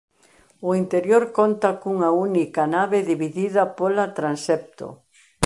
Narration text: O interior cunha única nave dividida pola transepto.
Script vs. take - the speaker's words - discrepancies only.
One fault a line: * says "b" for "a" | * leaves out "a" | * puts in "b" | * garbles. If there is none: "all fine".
* puts in "conta"